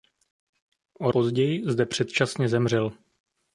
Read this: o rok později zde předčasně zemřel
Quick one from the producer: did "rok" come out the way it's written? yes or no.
no